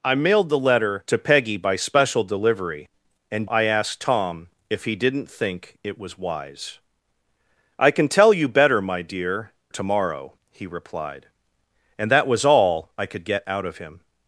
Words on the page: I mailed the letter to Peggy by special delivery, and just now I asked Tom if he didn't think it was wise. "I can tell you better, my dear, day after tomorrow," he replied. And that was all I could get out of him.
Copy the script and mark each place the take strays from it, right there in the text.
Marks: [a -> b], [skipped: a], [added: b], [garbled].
I mailed the letter to Peggy by special delivery, and [skipped: just now] I asked Tom if he didn't think it was wise. "I can tell you better, my dear, [skipped: day after] tomorrow," he replied. And that was all I could get out of him.